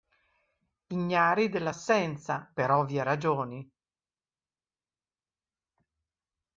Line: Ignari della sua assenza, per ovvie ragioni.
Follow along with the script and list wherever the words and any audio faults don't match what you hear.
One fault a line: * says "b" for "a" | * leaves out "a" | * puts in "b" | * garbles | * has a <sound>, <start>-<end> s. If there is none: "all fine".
* leaves out "sua"